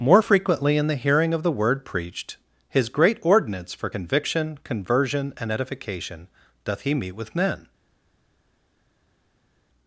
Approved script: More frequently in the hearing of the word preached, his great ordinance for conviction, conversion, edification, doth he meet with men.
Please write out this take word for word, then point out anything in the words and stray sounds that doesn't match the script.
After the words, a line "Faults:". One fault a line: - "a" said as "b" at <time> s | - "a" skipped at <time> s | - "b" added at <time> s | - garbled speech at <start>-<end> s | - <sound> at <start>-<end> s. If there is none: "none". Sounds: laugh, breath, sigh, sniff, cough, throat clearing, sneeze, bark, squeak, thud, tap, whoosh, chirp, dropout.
More frequently in the hearing of the word preached, his great ordinance for conviction, conversion, and edification, doth he meet with men.
Faults:
- "and" added at 5.4 s